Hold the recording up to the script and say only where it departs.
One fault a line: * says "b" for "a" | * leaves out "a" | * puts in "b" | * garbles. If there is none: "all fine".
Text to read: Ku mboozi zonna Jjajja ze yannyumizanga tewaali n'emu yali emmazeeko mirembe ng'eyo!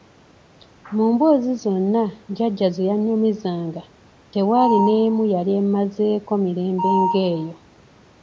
* says "Mu" for "Ku"